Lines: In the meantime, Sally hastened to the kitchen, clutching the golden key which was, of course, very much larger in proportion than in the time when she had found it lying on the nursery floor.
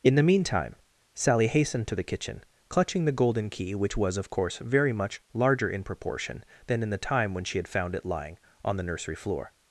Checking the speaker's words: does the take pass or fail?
pass